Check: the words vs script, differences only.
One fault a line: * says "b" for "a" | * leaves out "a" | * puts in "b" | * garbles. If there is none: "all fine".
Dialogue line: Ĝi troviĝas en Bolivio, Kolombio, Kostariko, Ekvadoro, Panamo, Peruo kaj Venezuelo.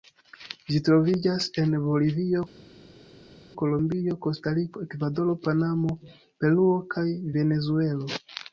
all fine